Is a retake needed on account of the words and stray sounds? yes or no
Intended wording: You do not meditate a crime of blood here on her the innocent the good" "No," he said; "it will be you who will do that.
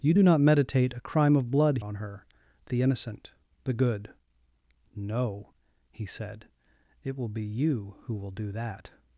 yes